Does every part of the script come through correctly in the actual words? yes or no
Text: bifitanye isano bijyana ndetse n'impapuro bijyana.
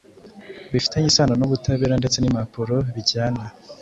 no